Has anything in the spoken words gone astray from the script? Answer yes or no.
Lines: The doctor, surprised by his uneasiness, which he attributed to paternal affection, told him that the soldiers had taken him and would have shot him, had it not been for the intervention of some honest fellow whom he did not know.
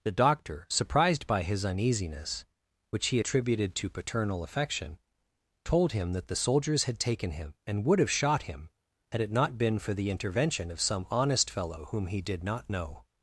no